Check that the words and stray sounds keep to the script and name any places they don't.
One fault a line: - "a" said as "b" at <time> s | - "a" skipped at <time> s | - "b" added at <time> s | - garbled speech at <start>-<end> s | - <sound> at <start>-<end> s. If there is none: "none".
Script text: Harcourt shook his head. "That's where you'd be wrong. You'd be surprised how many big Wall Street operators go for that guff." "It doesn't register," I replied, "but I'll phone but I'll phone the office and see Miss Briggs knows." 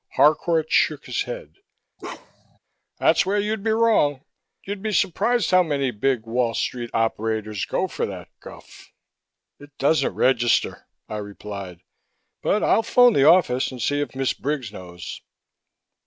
- bark at 2.0-2.6 s
- "but I'll phone" skipped at 13.1 s
- "if" added at 14.0 s